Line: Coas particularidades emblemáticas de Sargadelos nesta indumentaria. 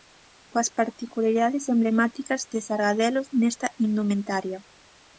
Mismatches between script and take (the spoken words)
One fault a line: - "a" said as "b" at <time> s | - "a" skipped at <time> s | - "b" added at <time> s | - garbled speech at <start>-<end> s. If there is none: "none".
none